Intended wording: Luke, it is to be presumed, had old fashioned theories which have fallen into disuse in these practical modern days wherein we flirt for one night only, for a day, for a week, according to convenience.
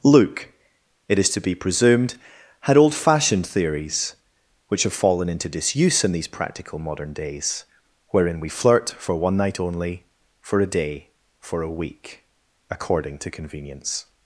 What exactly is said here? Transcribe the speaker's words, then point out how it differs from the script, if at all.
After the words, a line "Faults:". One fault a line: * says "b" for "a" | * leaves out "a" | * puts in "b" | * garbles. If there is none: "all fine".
Luke, it is to be presumed, had old fashioned theories which have fallen into disuse in these practical modern days wherein we flirt for one night only, for a day, for a week, according to convenience.
Faults:
all fine